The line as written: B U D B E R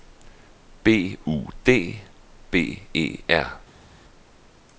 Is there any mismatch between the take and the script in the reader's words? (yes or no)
no